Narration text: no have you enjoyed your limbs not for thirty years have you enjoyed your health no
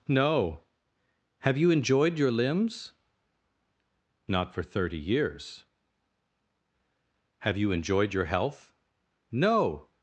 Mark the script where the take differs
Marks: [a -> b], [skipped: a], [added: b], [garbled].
no have you enjoyed your limbs not for thirty years have you enjoyed your health no